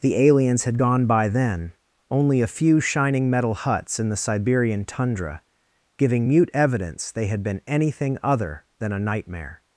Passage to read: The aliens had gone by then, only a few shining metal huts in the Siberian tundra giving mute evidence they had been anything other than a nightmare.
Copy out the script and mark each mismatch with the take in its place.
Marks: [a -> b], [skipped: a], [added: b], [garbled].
The aliens had gone by then, only a few shining metal huts in the Siberian tundra giving mute evidence they had been anything other than a nightmare.